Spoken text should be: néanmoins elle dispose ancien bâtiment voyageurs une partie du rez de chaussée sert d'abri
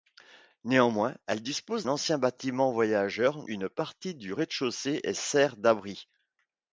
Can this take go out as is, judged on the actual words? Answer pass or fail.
pass